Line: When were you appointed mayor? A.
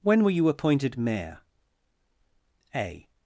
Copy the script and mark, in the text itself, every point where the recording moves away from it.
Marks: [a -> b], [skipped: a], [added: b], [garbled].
When were you appointed mayor? A.